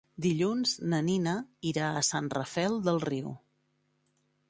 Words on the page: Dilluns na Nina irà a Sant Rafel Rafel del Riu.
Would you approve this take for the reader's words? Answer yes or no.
no